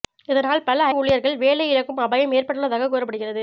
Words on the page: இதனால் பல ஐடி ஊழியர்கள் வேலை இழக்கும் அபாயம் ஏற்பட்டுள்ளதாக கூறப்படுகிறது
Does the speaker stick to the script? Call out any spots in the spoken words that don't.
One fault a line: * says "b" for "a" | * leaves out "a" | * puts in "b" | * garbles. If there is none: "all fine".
* leaves out "ஐடி"